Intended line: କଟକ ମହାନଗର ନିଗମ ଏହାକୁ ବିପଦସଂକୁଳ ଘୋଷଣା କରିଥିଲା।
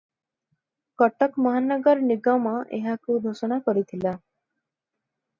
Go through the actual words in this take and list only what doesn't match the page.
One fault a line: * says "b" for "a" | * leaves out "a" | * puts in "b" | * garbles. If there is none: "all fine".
* leaves out "ବିପଦସଂକୁଳ"